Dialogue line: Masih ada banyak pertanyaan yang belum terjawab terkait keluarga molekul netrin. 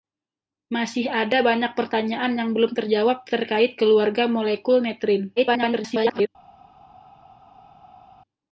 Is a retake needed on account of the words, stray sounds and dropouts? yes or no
yes